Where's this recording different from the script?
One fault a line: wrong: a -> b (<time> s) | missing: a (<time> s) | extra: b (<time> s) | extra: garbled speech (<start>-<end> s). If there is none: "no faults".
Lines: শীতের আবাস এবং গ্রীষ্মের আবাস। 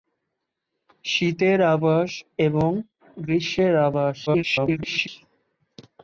extra: garbled speech (4.3-5.1 s)